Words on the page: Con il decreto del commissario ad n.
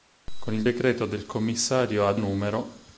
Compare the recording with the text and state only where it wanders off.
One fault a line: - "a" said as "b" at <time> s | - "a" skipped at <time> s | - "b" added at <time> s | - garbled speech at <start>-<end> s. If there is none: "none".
none